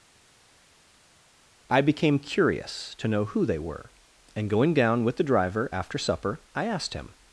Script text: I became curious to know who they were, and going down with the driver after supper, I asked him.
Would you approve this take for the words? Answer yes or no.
yes